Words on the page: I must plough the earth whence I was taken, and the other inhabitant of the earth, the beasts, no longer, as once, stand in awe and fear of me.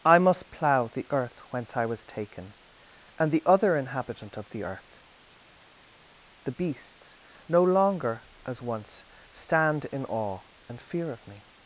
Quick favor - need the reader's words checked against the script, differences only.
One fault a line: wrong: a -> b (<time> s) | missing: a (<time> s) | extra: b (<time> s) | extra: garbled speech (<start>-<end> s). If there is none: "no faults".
no faults